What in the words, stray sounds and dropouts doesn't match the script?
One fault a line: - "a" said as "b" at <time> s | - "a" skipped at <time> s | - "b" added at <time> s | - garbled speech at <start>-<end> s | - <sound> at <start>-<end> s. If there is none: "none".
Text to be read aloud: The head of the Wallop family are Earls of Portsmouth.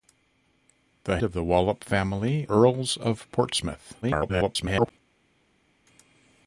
- "head" skipped at 1.2 s
- "are" skipped at 2.5 s
- garbled speech at 4.0-4.9 s